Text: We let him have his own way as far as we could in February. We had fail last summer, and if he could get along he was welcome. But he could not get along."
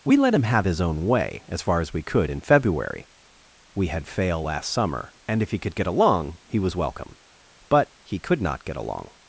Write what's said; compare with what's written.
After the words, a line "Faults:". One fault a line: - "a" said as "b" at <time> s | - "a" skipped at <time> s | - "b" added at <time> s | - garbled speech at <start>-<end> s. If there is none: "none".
We let him have his own way as far as we could in February. We had fail last summer, and if he could get along he was welcome. But he could not get along."
Faults:
none